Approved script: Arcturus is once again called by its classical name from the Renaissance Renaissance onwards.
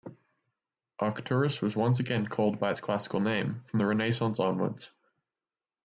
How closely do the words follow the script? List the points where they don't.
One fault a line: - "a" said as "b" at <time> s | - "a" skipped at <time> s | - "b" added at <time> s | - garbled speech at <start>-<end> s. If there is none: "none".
- "is" said as "was" at 1.6 s
- "Renaissance" skipped at 4.4 s